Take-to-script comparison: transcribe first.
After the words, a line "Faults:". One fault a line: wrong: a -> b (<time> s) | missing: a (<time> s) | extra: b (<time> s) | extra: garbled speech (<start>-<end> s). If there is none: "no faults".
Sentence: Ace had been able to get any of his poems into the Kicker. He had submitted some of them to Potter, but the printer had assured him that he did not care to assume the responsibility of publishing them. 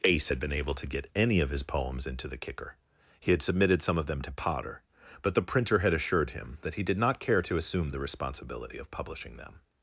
Ace had been able to get any of his poems into the Kicker. He had submitted some of them to Potter, but the printer had assured him that he did not care to assume the responsibility of publishing them.
Faults:
no faults